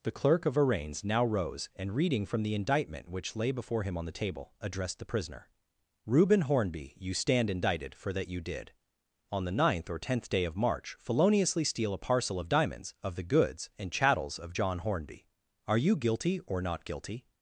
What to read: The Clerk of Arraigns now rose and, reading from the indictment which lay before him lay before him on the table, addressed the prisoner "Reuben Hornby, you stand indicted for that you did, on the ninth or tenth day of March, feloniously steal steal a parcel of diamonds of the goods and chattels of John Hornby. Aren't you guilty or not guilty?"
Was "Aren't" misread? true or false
true